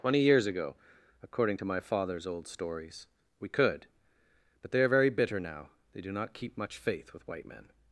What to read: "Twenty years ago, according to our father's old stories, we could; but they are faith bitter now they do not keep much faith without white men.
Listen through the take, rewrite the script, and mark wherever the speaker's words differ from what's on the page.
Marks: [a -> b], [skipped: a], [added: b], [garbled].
"Twenty years ago, according to [our -> my] father's old stories, we could; but they are [faith -> very] bitter now they do not keep much faith [without -> with] white men.